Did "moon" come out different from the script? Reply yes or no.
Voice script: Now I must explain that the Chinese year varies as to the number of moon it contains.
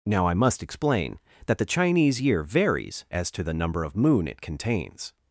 no